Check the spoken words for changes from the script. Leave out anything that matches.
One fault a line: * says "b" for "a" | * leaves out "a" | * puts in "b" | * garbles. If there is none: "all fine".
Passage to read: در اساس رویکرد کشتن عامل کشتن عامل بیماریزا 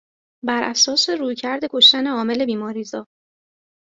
* says "بر" for "در"
* leaves out "کشتن عامل"